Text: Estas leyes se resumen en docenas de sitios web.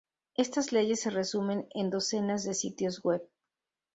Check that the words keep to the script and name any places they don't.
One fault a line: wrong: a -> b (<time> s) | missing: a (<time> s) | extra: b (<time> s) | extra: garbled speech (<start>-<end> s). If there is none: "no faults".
no faults